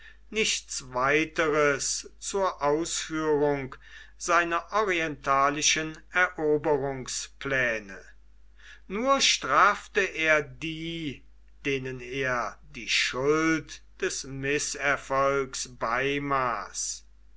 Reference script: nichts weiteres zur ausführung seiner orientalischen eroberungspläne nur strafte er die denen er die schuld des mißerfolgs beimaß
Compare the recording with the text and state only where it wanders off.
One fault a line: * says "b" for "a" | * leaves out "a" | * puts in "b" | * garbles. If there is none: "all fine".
all fine